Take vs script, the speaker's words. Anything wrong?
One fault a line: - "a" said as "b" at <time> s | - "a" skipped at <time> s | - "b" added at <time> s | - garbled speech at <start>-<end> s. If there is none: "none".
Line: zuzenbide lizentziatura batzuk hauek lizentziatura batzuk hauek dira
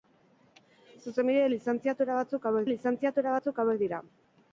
none